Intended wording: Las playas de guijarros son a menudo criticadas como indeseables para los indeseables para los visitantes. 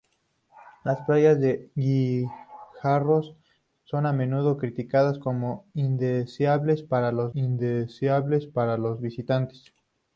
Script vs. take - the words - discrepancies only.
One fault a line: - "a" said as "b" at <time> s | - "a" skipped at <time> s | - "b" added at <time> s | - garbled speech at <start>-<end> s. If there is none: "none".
none